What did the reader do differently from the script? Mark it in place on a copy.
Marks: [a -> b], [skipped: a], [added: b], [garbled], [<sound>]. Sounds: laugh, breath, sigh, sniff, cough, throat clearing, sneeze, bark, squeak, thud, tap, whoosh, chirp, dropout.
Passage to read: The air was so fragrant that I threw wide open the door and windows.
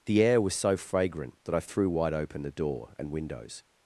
The air was so fragrant that I threw wide open the door and windows.